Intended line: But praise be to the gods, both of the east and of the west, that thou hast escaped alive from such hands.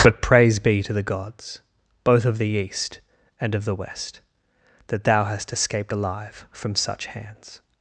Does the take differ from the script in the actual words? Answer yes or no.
no